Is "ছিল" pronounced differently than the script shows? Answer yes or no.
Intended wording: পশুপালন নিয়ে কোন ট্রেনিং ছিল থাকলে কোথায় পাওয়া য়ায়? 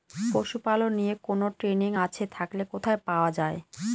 yes